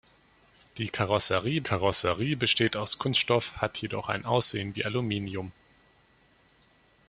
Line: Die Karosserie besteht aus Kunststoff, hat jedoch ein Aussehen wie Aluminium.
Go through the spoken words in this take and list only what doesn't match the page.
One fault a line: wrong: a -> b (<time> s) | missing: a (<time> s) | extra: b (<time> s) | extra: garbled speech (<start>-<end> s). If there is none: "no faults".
extra: Karosserie (1.6 s)